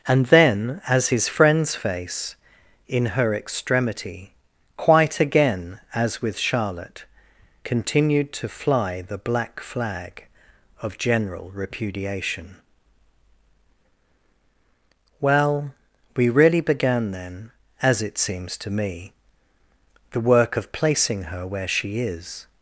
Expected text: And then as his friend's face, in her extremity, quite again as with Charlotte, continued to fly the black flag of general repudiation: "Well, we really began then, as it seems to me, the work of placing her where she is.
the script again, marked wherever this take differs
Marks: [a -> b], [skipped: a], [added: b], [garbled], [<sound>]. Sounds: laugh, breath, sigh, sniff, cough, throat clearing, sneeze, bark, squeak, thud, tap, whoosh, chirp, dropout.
And then as his friend's face, in her extremity, quite again as with Charlotte, continued to fly the black flag of general repudiation: "Well, we really began then, as it seems to me, the work of placing her where she is.